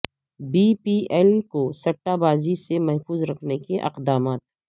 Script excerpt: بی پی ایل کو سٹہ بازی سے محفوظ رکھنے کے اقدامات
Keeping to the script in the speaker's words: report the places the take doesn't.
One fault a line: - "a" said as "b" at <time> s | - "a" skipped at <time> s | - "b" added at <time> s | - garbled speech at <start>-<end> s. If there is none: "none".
none